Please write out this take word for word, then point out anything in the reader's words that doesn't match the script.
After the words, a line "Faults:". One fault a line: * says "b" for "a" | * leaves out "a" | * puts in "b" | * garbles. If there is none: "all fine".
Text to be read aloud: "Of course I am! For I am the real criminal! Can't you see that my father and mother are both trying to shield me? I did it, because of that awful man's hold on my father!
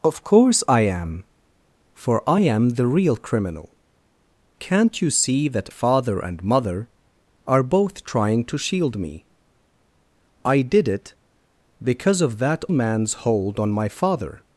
"Of course I am! For I am the real criminal! Can't you see that father and mother are both trying to shield me? I did it, because of that man's hold on my father!
Faults:
* leaves out "my"
* leaves out "awful"